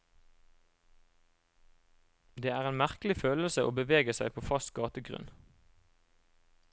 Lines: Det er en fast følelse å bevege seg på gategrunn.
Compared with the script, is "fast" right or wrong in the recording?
wrong